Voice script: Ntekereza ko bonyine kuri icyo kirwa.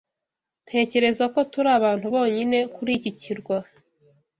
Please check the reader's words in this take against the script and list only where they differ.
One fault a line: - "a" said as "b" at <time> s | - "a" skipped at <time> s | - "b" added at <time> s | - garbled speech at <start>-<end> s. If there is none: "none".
- "turi abantu" added at 1.5 s
- "icyo" said as "iki" at 3.0 s